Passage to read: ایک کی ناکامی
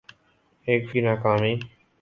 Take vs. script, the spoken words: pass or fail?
pass